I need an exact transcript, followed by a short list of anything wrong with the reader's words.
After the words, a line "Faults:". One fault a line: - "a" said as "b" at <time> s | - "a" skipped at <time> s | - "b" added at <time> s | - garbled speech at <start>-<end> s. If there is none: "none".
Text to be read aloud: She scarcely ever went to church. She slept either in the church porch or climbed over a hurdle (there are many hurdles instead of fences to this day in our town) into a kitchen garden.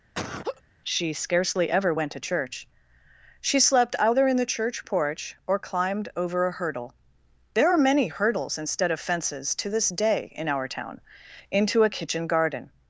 She scarcely ever went to church. She slept either in the church porch or climbed over a hurdle (there are many hurdles instead of fences to this day in our town) into a kitchen garden.
Faults:
none